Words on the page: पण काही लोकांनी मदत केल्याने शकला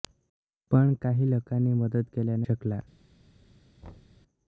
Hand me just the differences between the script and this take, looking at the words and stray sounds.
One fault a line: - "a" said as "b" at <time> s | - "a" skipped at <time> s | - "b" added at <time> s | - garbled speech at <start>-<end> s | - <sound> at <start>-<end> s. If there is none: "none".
- thud at 3.8-4.2 s